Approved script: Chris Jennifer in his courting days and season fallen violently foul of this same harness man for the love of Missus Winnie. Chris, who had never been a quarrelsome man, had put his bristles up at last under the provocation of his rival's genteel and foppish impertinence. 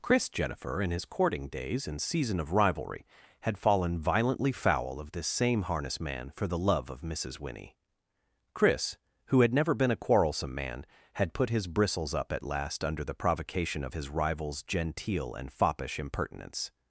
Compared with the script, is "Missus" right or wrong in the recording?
right